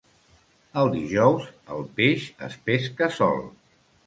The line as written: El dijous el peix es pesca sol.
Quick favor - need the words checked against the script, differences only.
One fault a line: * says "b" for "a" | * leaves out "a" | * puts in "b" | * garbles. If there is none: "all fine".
all fine